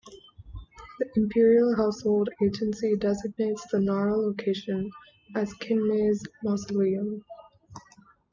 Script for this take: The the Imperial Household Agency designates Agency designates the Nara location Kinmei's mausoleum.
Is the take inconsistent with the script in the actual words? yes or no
yes